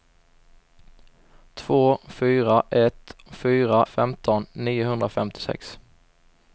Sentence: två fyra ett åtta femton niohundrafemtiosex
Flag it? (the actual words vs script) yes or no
yes